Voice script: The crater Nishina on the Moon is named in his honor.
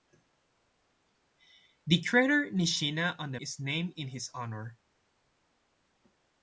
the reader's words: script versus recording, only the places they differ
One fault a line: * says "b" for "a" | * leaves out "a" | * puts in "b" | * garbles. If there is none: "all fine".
* leaves out "Moon"